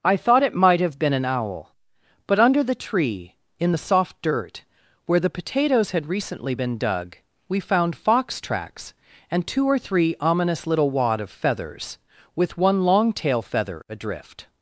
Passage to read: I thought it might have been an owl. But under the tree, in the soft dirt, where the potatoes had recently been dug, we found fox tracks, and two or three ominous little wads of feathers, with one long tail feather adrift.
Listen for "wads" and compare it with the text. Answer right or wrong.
wrong